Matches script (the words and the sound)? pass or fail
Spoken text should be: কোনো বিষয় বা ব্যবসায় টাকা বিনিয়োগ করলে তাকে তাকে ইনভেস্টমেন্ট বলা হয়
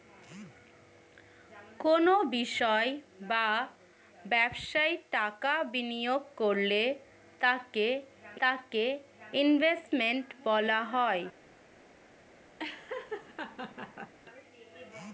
fail